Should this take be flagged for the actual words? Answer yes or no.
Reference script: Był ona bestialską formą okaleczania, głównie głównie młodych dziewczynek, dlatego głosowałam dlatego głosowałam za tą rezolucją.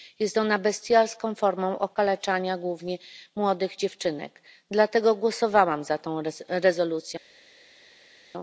yes